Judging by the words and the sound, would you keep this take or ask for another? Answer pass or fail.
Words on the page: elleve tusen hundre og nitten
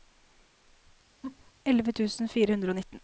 fail